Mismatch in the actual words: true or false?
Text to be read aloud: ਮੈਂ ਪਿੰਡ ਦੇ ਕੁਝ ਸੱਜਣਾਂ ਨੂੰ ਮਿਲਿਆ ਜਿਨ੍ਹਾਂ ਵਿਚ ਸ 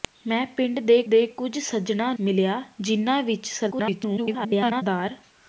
true